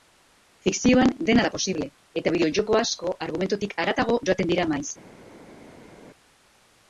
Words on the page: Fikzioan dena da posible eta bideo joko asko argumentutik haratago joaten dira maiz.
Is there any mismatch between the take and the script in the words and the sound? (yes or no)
no